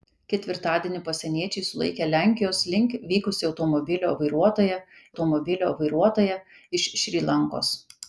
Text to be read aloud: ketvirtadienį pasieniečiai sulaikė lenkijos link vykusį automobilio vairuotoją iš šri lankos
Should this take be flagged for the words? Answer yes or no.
yes